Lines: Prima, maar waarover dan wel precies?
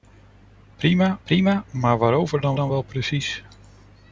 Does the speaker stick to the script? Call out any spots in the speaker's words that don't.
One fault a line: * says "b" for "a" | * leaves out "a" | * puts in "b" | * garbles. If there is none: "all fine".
* puts in "prima"
* puts in "dan"